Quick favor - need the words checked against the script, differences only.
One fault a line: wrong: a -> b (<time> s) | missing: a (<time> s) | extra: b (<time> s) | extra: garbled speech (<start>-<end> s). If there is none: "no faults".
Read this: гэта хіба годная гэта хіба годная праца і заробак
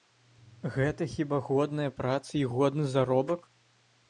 missing: гэта хіба годная (1.9 s)
extra: годны (2.5 s)